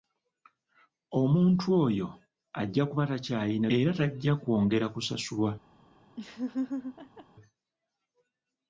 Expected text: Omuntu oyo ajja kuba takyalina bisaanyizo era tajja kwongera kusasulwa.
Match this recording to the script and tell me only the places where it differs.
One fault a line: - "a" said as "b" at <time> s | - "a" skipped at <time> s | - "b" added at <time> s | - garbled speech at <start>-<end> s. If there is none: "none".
- "bisaanyizo" skipped at 3.7 s